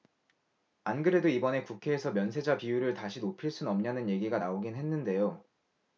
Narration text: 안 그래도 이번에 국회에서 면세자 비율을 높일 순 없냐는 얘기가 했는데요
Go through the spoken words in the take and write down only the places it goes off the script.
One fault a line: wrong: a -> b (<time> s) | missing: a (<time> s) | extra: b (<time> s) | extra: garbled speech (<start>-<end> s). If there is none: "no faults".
extra: 다시 (2.9 s)
extra: 나오긴 (4.4 s)